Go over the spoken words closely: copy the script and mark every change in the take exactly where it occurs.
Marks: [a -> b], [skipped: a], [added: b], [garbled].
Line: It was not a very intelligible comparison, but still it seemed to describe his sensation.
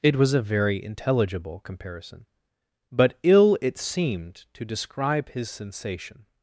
It was [skipped: not] a very intelligible comparison, but [still -> ill] it seemed to describe his sensation.